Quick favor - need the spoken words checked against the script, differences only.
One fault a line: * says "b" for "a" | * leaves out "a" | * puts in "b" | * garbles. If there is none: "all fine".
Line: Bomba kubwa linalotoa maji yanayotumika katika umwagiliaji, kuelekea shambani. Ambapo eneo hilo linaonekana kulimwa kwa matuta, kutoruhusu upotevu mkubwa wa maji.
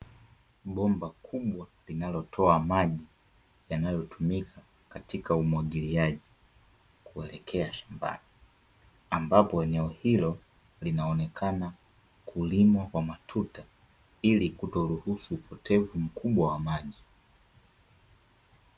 * puts in "ili"